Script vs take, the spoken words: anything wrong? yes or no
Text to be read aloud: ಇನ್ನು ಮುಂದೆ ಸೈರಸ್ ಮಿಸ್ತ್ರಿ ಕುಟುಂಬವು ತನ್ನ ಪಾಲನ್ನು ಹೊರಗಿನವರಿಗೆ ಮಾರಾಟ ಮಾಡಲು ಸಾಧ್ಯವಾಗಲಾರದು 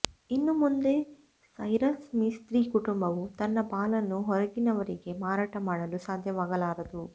no